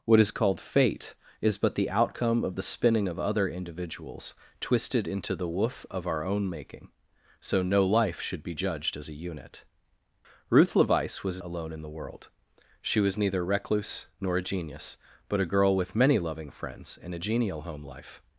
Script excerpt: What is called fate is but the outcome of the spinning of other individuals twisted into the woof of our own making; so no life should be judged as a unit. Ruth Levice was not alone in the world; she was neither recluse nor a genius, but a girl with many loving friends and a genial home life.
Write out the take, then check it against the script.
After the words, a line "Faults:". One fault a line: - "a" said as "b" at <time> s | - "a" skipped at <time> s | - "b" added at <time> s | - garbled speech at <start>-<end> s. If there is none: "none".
What is called fate is but the outcome of the spinning of other individuals twisted into the woof of our own making; so no life should be judged as a unit. Ruth Levice was alone in the world; she was neither recluse nor a genius, but a girl with many loving friends and a genial home life.
Faults:
- "not" skipped at 11.4 s